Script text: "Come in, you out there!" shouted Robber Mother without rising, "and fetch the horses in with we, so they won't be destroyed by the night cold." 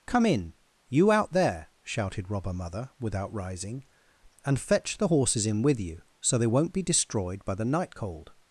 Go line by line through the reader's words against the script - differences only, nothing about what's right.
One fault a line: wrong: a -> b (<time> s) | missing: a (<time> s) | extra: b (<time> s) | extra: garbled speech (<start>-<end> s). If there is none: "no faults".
wrong: we -> you (5.8 s)